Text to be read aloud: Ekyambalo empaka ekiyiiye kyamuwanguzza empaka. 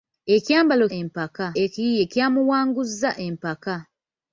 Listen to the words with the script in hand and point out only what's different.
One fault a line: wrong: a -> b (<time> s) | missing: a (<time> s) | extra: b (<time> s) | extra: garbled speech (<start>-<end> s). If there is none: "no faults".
no faults